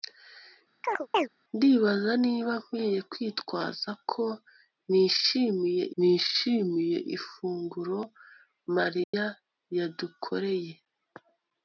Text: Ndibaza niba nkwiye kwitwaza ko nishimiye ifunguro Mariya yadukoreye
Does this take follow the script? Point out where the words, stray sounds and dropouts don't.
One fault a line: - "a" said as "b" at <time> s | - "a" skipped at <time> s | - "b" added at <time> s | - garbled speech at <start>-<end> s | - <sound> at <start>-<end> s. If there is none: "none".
- chirp at 0.8-1.3 s
- "nishimiye" added at 6.0 s
- dropout at 9.0-9.1 s